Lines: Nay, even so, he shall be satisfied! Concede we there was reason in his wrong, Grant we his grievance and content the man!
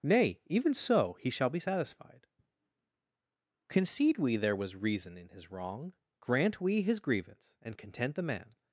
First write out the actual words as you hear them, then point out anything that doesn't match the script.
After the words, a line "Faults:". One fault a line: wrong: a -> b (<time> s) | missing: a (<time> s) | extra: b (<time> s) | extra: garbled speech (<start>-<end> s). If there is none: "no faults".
Nay, even so, he shall be satisfied! Concede we there was reason in his wrong, Grant we his grievance and content the man!
Faults:
no faults